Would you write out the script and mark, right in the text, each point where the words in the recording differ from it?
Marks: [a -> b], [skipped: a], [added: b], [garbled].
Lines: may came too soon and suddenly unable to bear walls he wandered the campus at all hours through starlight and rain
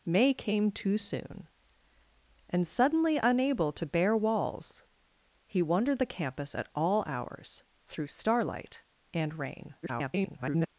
may came too soon and suddenly unable to bear walls he wandered the campus at all hours through starlight and rain [garbled]